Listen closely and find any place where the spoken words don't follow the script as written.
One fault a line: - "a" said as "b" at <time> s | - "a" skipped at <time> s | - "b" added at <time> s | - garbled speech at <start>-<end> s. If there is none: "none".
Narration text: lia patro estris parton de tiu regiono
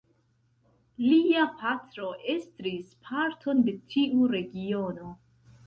none